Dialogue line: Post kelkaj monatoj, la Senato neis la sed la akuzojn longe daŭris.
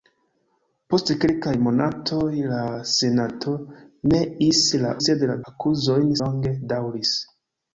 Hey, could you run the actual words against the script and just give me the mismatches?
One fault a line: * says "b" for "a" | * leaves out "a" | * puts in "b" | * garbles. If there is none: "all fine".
all fine